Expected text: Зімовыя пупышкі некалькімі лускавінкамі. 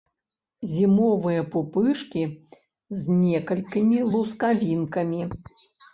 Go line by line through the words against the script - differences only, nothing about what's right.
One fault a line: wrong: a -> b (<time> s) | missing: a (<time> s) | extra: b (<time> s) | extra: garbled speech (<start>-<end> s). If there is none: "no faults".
extra: з (3.0 s)